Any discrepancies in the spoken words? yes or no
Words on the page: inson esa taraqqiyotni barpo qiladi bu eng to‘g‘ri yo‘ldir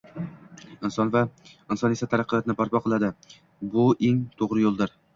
no